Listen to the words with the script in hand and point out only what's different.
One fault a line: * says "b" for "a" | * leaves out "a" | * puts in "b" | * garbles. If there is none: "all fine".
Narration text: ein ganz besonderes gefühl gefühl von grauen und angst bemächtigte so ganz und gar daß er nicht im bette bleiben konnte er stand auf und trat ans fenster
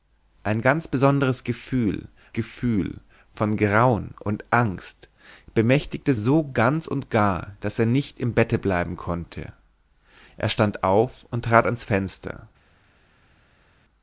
all fine